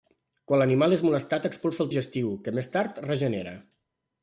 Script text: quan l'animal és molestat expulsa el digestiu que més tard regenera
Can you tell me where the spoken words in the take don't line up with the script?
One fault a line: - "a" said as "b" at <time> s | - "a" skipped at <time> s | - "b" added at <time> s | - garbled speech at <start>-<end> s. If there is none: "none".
none